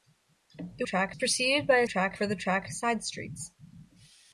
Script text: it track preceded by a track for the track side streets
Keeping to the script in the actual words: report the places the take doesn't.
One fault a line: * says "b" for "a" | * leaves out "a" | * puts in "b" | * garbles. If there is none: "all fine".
all fine